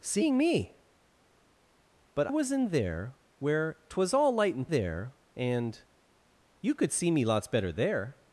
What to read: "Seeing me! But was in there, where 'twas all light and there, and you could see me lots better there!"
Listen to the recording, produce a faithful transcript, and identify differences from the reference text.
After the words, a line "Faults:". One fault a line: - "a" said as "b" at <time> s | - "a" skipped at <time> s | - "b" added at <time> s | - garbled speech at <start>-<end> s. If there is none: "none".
"Seeing me! But was in there, where 'twas all light and there, and you could see me lots better there!"
Faults:
none